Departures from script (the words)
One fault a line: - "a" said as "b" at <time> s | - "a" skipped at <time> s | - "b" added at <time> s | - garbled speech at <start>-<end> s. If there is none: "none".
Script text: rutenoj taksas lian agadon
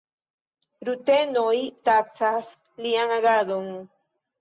none